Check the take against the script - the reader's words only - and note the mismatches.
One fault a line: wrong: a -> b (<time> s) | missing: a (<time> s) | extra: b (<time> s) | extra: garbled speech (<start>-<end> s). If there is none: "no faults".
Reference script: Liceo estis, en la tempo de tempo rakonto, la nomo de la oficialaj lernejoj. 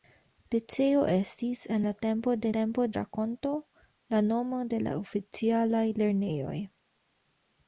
no faults